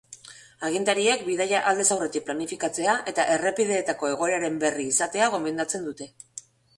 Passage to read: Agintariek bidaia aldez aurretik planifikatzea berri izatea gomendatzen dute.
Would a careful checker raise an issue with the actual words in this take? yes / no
yes